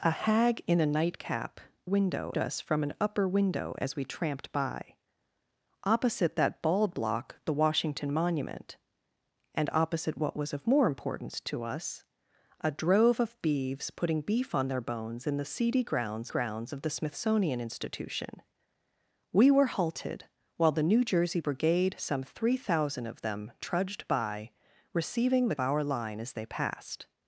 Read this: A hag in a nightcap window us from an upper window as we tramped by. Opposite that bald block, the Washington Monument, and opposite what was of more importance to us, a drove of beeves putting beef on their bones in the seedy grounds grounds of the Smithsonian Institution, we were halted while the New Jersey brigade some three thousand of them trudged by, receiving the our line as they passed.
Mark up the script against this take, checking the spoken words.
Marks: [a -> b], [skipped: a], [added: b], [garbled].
A hag in a nightcap window us from an upper window as we tramped by. Opposite that bald block, the Washington Monument, and opposite what was of more importance to us, a drove of beeves putting beef on their bones in the seedy grounds grounds of the Smithsonian Institution, we were halted while the New Jersey brigade some three thousand of them trudged by, receiving the our line as they passed.